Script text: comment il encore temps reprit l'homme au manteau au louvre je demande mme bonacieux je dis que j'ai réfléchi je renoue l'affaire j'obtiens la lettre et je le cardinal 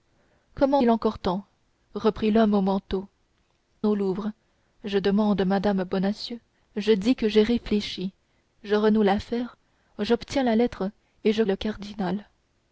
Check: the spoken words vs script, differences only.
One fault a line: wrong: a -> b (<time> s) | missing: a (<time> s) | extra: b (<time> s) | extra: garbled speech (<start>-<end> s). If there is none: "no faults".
no faults